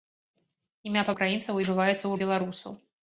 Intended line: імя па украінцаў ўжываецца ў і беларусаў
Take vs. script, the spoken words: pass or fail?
pass